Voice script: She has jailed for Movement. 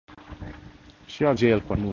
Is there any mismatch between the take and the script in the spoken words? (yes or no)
no